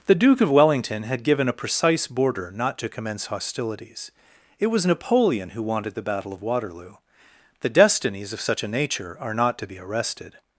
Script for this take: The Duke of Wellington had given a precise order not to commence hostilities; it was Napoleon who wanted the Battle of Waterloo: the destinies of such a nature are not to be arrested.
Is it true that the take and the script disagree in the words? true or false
true